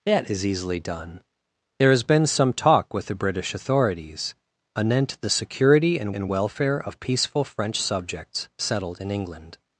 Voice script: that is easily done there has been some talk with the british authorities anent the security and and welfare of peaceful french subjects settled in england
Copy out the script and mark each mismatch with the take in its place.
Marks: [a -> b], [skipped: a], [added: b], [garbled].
that is easily done there has been some talk with the british authorities anent the security and and welfare of peaceful french subjects settled in england